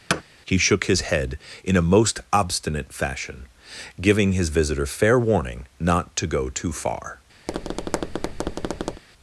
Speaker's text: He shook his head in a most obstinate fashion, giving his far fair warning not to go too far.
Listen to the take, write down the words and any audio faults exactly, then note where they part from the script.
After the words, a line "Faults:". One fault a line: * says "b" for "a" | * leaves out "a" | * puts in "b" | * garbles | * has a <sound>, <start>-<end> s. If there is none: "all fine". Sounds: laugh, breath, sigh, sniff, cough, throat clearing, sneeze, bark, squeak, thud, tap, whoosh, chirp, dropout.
He shook his head in a most obstinate fashion, giving his visitor fair warning not to go too far.
Faults:
* has a thud, 0.1-0.2 s
* says "visitor" for "far"
* has a tap, 7.5-9.0 s